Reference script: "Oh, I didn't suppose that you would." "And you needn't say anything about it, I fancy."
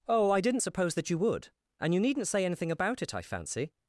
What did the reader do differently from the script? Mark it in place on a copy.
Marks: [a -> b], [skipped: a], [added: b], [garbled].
"Oh, I didn't suppose that you would." "And you needn't say anything about it, I fancy."